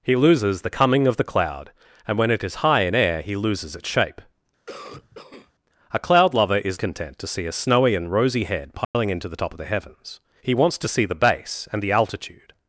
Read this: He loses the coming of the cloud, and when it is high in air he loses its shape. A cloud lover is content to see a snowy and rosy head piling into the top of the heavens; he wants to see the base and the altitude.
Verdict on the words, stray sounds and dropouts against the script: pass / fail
fail